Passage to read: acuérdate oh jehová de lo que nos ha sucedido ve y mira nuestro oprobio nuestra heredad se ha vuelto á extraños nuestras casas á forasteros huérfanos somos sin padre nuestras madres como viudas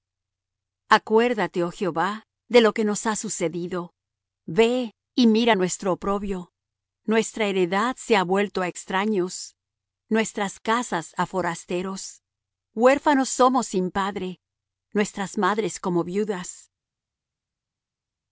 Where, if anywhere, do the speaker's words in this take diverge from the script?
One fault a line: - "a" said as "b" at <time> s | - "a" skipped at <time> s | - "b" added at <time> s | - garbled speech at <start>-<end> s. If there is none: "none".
none